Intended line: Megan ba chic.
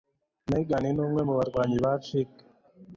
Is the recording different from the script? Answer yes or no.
yes